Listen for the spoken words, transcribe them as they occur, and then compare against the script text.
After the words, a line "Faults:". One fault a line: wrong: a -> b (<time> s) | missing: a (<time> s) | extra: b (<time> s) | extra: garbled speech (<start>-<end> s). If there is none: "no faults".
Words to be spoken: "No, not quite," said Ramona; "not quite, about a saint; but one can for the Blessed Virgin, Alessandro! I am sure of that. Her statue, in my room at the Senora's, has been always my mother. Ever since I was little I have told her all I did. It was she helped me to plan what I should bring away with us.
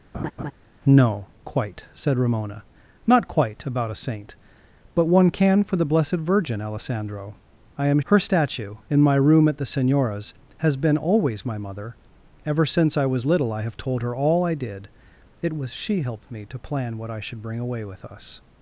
"No, quite," said Ramona; "not quite, about a saint; but one can for the Blessed Virgin, Alessandro! I am. Her statue, in my room at the Senora's, has been always my mother. Ever since I was little I have told her all I did. It was she helped me to plan what I should bring away with us.
Faults:
missing: not (1.3 s)
missing: sure of that (8.0 s)